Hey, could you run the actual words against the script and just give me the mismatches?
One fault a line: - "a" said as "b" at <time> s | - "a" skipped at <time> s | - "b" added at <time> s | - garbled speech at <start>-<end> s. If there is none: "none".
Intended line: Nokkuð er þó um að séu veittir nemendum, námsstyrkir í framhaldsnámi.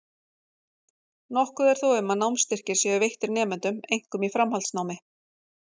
- "námsstyrkir" added at 2.2 s
- "námsstyrkir" said as "einkum" at 4.0 s